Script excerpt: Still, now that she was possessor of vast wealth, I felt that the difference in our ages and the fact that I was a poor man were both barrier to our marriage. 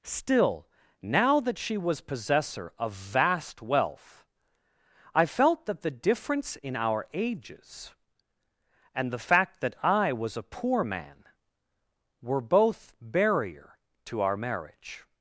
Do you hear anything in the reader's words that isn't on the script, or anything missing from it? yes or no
no